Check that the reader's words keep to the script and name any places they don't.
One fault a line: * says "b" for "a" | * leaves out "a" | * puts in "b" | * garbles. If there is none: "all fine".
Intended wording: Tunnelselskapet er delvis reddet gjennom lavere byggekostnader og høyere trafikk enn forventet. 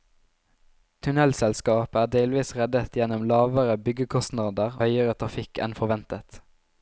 * leaves out "og"